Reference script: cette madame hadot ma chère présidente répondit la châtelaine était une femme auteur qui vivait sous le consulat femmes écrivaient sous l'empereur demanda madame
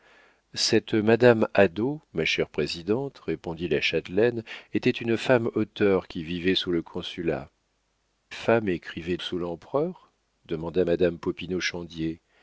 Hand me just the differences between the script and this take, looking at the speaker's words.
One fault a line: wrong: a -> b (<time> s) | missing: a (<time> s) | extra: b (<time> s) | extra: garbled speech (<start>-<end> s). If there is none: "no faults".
no faults